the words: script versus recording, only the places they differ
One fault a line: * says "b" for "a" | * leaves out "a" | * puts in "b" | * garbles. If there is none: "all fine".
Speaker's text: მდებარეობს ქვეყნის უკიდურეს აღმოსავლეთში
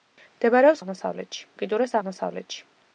* says "აღმოსავლეთში" for "ქვეყნის"